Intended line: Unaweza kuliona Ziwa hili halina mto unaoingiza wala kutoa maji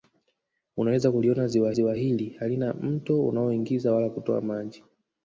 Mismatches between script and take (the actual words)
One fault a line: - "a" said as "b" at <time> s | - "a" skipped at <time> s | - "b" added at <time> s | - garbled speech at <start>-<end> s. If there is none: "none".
- "Ziwa" added at 1.7 s